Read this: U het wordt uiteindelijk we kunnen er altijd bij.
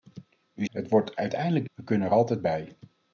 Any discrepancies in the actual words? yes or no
no